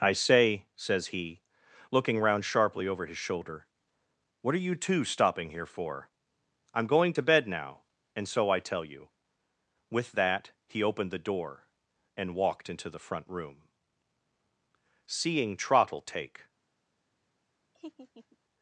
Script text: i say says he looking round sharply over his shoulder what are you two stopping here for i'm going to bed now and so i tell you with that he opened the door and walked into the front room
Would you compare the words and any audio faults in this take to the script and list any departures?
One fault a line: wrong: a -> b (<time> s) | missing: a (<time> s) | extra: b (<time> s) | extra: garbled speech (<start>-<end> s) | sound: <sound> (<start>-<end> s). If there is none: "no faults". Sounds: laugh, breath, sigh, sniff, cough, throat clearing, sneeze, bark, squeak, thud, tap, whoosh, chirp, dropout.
extra: seeing trottle take (15.0 s)
sound: laugh (17.7-18.4 s)